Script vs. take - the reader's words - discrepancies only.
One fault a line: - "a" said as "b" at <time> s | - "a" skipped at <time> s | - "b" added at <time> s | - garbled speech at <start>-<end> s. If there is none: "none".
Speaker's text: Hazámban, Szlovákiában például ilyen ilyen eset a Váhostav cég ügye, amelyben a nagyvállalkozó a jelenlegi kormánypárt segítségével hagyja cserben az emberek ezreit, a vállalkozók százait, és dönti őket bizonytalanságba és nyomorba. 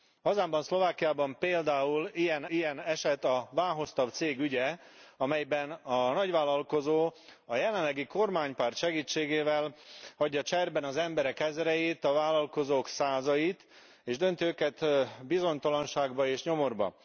none